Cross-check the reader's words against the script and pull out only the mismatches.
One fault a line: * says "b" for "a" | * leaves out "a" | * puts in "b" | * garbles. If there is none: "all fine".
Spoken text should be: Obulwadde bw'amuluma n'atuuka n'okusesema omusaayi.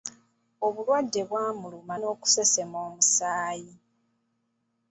* leaves out "n'atuuka"